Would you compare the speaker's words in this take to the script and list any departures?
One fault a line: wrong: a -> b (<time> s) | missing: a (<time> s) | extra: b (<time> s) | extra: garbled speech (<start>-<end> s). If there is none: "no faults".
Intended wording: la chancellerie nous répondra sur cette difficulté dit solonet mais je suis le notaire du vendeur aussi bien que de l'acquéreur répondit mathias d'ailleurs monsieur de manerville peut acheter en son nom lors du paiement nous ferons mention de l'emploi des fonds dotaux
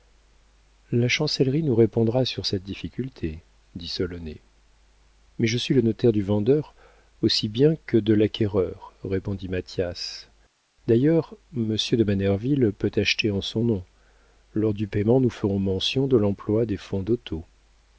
no faults